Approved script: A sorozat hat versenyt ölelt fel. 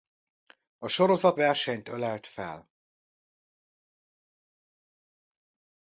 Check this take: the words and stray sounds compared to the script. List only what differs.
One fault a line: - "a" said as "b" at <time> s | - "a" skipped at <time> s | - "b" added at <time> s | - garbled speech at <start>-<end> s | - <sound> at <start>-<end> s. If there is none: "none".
- "hat" skipped at 1.4 s